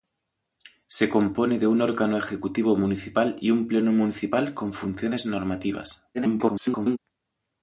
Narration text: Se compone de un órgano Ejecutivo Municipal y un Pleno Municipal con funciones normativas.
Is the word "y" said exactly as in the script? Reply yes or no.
yes